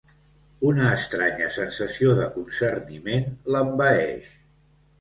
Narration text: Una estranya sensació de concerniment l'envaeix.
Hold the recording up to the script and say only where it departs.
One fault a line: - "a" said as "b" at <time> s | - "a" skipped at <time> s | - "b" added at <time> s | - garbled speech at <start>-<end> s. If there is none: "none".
none